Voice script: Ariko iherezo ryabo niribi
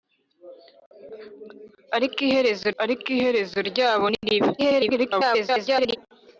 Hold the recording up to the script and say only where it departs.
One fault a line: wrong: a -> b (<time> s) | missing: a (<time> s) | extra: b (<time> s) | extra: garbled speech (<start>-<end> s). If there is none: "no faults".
extra: ariko iherezo (2.8 s)
extra: garbled speech (4.6-6.0 s)